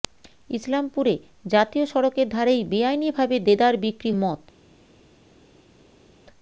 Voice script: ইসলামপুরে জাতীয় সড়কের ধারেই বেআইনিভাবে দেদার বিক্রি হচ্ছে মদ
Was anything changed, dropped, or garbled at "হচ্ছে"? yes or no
yes